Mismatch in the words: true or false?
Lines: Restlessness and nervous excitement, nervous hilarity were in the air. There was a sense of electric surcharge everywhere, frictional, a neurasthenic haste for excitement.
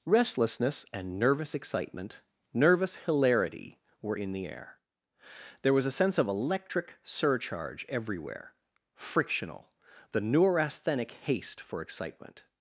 true